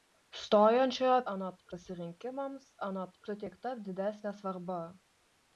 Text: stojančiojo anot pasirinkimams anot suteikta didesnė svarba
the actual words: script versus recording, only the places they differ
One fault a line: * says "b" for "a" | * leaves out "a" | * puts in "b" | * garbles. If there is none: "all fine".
all fine